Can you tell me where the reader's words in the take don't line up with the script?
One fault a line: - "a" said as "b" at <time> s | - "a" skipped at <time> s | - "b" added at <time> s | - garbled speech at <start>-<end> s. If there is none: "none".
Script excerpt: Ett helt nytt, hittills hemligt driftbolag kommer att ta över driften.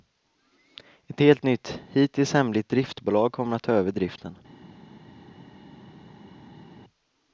none